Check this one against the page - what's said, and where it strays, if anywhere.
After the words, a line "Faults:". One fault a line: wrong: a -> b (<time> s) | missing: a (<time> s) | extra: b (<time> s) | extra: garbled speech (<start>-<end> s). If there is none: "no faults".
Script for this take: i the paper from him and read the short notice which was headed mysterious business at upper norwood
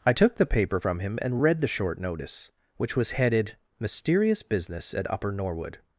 i took the paper from him and read the short notice which was headed mysterious business at upper norwood
Faults:
extra: took (0.1 s)